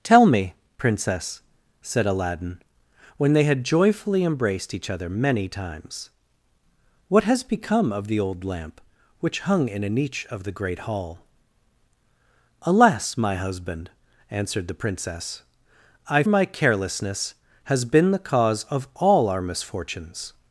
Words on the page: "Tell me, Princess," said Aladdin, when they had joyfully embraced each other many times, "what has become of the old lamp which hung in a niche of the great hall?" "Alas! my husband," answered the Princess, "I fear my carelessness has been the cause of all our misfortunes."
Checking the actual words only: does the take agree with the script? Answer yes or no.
no